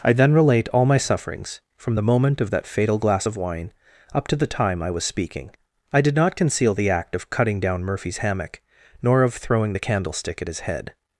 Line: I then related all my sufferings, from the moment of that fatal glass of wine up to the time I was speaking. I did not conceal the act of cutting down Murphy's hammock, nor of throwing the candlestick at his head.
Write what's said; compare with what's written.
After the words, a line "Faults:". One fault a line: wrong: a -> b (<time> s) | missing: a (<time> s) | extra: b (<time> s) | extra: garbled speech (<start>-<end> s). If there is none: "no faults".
I then relate all my sufferings, from the moment of that fatal glass of wine up to the time I was speaking. I did not conceal the act of cutting down Murphy's hammock, nor of throwing the candlestick at his head.
Faults:
wrong: related -> relate (0.3 s)